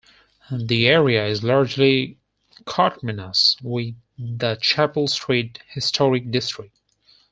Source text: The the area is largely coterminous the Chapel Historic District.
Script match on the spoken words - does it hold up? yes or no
no